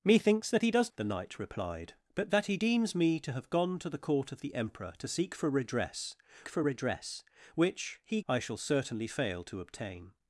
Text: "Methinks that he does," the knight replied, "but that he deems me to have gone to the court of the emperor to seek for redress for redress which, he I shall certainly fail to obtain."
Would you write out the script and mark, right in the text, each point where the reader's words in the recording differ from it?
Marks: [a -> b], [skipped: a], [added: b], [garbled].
"Methinks that he does," the knight replied, "but that he deems me to have gone to the court of the emperor to seek for redress for redress which, he I shall certainly fail to obtain."